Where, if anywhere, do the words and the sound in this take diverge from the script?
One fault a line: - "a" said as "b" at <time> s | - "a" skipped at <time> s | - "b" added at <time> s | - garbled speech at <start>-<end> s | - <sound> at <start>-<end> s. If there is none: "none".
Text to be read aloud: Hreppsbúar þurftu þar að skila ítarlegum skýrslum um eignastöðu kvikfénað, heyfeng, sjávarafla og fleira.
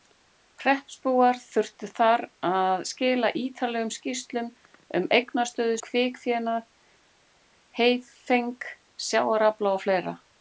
none